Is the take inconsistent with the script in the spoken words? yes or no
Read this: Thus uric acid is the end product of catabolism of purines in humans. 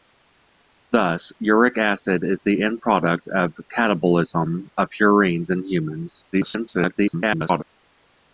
yes